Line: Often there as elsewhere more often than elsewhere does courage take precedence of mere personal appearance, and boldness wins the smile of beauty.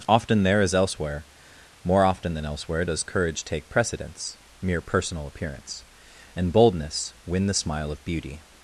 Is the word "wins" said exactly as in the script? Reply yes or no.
no